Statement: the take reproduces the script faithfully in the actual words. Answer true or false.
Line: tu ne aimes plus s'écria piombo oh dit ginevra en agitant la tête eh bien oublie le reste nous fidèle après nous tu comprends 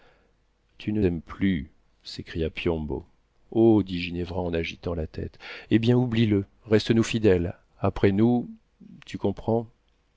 true